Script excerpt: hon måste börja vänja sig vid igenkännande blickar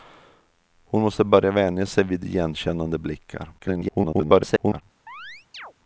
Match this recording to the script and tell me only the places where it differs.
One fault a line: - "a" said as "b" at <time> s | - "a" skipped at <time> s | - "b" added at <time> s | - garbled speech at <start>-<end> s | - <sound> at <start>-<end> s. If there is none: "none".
- garbled speech at 3.6-4.8 s
- chirp at 5.1-5.7 s